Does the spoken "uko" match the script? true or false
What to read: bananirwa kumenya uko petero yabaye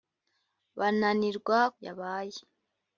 false